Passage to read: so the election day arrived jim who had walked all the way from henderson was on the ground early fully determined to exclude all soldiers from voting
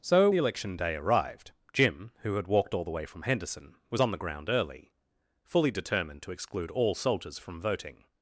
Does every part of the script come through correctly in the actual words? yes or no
yes